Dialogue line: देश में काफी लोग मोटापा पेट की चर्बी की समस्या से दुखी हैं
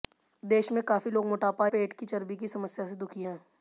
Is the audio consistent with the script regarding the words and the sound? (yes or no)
yes